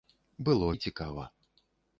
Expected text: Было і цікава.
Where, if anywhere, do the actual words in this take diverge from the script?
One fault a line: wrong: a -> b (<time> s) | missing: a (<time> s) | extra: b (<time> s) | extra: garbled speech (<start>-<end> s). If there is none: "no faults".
no faults